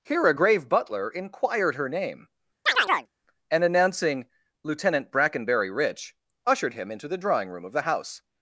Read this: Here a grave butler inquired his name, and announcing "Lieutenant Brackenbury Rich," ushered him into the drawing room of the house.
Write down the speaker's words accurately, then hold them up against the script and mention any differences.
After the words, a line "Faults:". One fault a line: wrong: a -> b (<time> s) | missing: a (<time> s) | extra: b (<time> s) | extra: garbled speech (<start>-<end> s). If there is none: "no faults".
Here a grave butler inquired her name, and announcing "Lieutenant Brackenbury Rich," ushered him into the drawing room of the house.
Faults:
wrong: his -> her (1.8 s)